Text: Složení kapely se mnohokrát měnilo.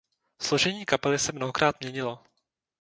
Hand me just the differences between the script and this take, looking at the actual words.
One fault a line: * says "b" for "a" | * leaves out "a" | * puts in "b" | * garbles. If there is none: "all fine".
all fine